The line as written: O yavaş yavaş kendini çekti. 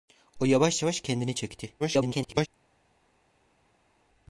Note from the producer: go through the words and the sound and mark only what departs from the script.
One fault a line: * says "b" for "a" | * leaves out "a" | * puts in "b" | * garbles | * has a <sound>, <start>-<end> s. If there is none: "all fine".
* garbles